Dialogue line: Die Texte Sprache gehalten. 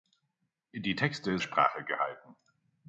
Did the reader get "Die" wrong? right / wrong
right